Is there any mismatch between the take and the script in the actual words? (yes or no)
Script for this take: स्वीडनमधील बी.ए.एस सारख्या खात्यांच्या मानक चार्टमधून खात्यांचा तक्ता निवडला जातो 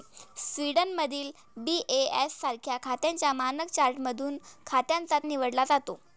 yes